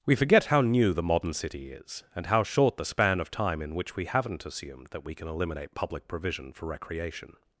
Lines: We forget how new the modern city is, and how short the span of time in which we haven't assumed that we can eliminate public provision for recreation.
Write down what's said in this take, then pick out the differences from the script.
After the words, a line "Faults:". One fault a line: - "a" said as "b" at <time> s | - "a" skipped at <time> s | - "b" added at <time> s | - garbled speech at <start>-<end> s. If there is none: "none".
We forget how new the modern city is, and how short the span of time in which we haven't assumed that we can eliminate public provision for recreation.
Faults:
none